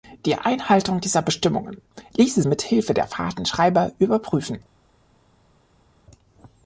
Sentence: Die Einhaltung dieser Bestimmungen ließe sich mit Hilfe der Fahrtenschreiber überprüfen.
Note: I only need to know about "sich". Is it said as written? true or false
false